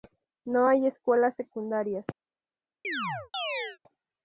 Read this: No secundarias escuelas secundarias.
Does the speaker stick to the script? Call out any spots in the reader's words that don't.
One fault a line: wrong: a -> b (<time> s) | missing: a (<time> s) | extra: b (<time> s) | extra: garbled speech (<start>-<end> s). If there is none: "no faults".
wrong: secundarias -> hay (0.7 s)